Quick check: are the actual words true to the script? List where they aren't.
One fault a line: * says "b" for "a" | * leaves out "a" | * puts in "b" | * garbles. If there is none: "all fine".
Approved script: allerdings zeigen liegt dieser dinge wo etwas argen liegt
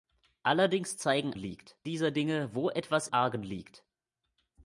all fine